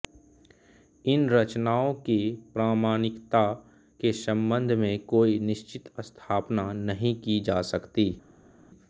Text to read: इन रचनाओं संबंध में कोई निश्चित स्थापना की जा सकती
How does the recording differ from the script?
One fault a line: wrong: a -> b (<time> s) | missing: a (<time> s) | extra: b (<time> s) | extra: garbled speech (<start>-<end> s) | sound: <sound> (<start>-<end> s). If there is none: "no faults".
extra: की प्रामाणिकता के (1.9 s)
extra: नहीं (6.7 s)